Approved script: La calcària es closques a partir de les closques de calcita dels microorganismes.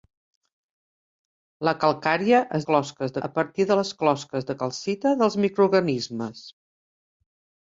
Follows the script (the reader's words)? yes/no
yes